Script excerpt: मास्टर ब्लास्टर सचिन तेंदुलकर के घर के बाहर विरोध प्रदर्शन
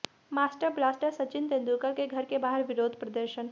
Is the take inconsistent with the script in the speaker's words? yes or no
no